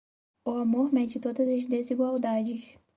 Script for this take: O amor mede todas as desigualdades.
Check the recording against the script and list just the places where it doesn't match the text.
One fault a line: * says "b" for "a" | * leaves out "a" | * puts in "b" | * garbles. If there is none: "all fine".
all fine